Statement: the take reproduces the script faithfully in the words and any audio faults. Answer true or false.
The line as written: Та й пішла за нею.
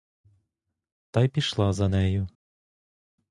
true